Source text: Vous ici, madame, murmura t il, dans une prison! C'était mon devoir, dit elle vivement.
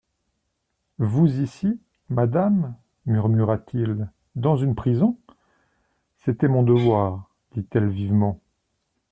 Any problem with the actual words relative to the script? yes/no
no